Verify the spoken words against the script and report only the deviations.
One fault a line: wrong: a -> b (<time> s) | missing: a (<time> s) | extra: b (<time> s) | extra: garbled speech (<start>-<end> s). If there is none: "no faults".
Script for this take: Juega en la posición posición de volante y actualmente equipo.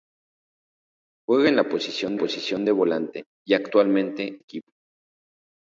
no faults